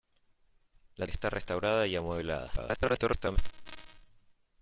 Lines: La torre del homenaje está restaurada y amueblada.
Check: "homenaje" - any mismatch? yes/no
yes